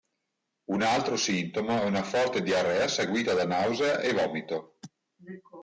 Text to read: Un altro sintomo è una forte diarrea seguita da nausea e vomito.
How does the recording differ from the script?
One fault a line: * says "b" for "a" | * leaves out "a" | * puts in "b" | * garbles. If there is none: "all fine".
all fine